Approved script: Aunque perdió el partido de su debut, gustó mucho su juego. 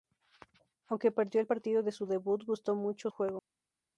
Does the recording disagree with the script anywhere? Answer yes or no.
yes